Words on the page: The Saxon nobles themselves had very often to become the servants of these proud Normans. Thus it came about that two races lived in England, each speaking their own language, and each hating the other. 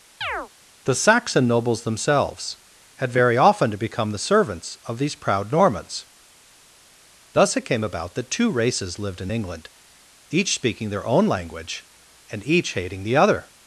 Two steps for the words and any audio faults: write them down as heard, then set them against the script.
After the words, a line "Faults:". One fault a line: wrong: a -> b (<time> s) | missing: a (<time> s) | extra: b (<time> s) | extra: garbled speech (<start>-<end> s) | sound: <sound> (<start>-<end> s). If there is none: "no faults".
The Saxon nobles themselves had very often to become the servants of these proud Normans. Thus it came about that two races lived in England, each speaking their own language, and each hating the other.
Faults:
sound: chirp (0.2-0.5 s)